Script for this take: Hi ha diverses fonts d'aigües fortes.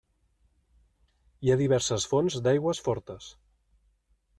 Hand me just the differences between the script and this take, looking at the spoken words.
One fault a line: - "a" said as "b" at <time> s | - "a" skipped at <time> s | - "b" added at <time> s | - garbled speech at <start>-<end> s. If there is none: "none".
none